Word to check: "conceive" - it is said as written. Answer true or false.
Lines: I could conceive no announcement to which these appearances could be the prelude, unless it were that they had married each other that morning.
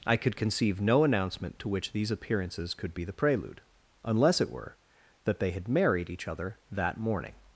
true